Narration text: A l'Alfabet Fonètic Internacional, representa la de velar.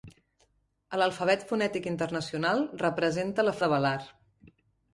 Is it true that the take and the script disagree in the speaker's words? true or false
false